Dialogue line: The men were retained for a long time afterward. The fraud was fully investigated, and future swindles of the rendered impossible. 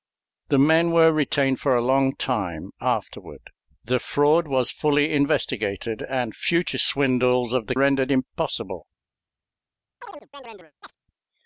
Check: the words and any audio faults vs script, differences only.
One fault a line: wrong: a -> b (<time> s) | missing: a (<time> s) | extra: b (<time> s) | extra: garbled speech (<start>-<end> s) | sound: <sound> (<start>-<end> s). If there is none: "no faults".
sound: chirp (10.0-11.0 s)